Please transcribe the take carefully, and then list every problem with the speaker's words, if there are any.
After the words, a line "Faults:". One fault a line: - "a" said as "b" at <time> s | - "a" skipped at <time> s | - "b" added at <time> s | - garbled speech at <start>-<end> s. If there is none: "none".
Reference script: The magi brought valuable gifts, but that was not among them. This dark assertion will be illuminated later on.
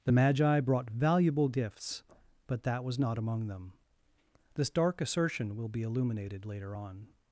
The magi brought valuable gifts, but that was not among them. This dark assertion will be illuminated later on.
Faults:
none